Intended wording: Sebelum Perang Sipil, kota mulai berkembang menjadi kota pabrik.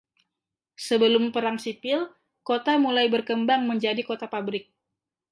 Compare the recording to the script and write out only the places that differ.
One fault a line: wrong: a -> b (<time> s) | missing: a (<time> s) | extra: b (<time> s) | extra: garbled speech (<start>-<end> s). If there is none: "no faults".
no faults